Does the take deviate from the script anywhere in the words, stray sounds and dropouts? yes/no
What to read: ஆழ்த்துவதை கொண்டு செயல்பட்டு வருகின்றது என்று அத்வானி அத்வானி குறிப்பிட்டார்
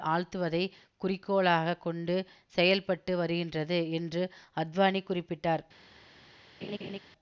yes